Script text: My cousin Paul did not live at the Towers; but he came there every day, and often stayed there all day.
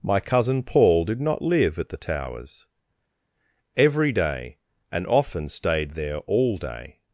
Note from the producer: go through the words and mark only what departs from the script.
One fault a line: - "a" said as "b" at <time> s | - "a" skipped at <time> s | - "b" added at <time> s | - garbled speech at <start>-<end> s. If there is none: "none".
- "but he came there" skipped at 2.6 s